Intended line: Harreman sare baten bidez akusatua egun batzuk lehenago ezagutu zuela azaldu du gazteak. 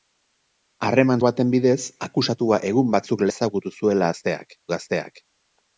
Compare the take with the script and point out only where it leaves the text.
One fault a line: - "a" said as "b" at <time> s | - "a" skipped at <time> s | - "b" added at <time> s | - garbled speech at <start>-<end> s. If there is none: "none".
- "sare" skipped at 1.2 s
- "lehenago" skipped at 3.3 s
- "azaldu" said as "gazteak" at 4.1 s